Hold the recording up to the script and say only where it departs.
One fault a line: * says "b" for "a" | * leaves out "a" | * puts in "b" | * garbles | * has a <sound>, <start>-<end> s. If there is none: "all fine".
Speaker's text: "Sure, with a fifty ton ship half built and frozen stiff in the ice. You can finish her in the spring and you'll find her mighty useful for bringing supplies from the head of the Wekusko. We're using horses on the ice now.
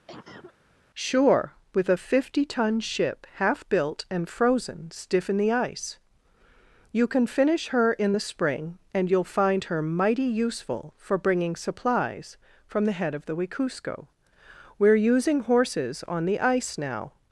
* has a cough, 0.1-0.5 s